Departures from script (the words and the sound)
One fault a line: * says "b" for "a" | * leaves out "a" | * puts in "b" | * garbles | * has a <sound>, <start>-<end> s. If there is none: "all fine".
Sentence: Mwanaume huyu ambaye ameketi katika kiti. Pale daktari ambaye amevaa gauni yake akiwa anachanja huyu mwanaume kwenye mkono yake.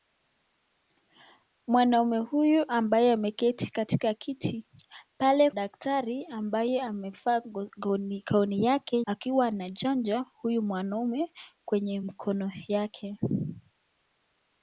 all fine